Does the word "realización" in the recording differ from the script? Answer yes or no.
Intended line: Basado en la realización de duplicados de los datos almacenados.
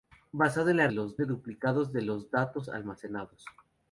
yes